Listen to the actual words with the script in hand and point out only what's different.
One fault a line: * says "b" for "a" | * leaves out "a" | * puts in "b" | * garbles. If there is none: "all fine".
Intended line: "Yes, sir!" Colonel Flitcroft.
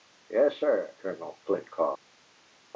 all fine